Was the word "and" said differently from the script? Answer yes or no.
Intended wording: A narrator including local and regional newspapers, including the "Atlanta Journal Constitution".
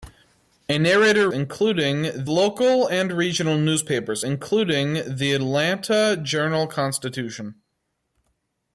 no